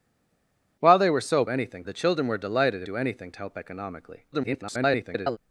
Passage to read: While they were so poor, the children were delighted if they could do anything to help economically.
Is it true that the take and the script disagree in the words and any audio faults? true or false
true